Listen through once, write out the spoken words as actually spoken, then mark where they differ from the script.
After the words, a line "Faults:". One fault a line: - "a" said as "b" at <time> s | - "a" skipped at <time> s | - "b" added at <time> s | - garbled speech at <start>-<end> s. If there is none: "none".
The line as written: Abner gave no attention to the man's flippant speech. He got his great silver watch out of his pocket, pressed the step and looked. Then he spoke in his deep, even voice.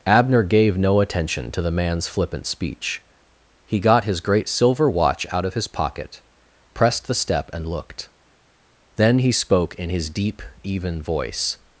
Abner gave no attention to the man's flippant speech. He got his great silver watch out of his pocket, pressed the step and looked. Then he spoke in his deep, even voice.
Faults:
none